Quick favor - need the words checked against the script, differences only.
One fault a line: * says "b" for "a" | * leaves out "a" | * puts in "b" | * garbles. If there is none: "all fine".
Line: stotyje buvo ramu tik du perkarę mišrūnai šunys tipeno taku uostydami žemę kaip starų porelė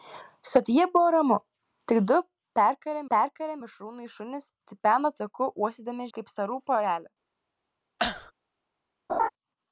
* puts in "perkarę"
* leaves out "žemę"